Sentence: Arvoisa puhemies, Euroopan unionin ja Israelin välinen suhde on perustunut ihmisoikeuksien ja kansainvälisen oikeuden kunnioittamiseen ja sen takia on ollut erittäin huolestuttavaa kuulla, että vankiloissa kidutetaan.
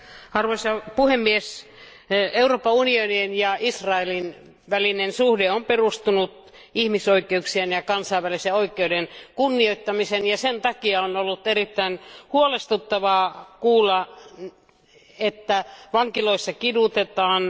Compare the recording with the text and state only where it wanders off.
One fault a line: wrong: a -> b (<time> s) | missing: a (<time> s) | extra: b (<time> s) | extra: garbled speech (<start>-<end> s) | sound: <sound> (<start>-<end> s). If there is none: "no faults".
no faults